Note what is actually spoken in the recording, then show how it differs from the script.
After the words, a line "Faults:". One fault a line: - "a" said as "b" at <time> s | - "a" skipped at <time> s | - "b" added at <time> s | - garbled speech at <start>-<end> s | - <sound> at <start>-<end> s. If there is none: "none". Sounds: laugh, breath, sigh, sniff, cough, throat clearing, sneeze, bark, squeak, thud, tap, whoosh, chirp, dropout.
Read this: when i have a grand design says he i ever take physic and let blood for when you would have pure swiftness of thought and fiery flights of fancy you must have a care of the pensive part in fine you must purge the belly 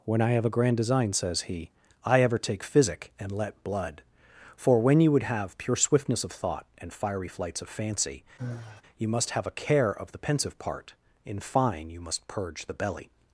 when i have a grand design says he i ever take physic and let blood for when you would have pure swiftness of thought and fiery flights of fancy you must have a care of the pensive part in fine you must purge the belly
Faults:
- sigh at 8.4-8.8 s